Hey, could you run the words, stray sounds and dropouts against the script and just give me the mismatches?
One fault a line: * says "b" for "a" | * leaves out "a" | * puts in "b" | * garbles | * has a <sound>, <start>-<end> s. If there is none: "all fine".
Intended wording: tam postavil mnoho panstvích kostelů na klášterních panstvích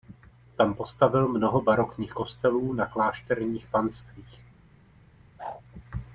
* says "barokních" for "panstvích"
* has a whoosh, 5.4-5.6 s